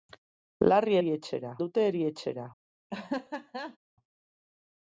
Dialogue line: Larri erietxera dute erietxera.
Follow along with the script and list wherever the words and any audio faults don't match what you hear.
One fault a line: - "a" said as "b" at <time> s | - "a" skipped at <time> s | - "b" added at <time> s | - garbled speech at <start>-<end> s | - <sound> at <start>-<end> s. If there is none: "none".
- laugh at 2.9-3.8 s